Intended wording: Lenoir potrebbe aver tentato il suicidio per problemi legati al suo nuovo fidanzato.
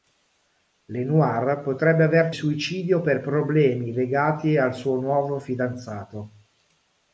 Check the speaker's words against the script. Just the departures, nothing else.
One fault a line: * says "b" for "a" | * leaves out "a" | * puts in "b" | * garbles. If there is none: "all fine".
* leaves out "tentato il"